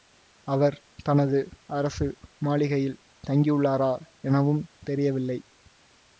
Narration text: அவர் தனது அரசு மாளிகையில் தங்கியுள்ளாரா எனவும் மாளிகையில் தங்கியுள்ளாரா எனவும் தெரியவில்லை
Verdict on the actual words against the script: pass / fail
fail